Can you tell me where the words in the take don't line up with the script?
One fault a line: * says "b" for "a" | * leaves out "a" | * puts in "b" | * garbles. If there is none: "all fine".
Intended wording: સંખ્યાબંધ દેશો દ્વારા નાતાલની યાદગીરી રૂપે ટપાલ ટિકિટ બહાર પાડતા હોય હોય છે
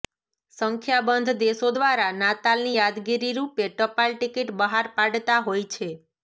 * leaves out "હોય"